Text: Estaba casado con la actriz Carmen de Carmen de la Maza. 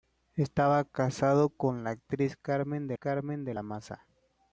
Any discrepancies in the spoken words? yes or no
no